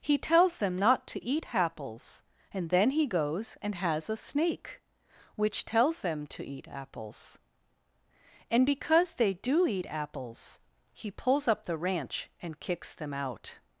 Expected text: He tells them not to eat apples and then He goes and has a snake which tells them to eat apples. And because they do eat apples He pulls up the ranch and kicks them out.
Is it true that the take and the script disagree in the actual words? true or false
false